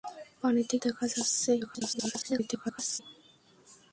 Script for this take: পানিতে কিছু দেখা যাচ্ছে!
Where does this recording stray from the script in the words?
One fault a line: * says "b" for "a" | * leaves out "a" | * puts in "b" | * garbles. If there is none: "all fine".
* leaves out "কিছু"
* garbles